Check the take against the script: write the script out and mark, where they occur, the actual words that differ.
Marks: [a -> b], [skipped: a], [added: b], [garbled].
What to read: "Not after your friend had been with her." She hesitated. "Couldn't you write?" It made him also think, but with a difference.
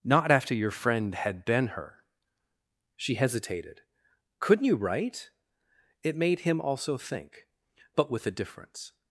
"Not after your friend had been [skipped: with] her." She hesitated. "Couldn't you write?" It made him also think, but with a difference.